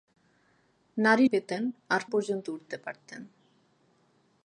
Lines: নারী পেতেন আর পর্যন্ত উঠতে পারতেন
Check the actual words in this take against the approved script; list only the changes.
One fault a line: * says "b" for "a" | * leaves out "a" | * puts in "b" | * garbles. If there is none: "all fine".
all fine